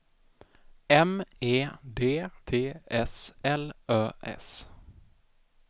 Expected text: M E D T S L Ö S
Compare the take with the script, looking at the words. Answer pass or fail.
pass